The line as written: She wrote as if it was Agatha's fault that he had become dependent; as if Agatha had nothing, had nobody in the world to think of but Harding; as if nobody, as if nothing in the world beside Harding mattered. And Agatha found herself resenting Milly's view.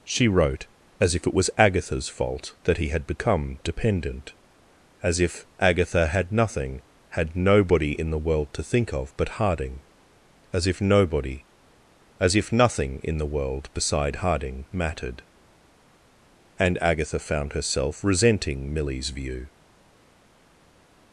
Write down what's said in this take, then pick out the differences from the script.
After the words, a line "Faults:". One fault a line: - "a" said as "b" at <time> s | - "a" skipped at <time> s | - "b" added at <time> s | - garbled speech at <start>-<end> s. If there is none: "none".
She wrote as if it was Agatha's fault that he had become dependent; as if Agatha had nothing, had nobody in the world to think of but Harding; as if nobody, as if nothing in the world beside Harding mattered. And Agatha found herself resenting Milly's view.
Faults:
none